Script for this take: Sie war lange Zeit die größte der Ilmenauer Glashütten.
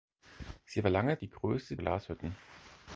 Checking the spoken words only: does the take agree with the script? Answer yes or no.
no